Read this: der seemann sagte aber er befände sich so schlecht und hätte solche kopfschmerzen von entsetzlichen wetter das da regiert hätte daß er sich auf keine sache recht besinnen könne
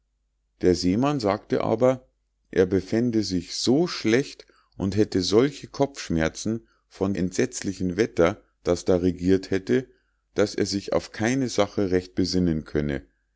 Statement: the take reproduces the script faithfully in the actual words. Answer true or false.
true